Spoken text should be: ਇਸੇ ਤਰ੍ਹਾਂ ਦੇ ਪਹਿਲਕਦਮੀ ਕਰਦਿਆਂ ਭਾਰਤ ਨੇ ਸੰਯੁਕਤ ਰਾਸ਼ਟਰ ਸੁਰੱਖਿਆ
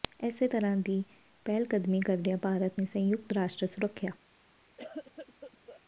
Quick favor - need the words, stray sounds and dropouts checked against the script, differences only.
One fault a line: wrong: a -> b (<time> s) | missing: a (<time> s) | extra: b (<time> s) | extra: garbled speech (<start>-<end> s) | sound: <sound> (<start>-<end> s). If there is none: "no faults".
wrong: ਦੇ -> ਦੀ (0.8 s)
sound: cough (4.8-5.8 s)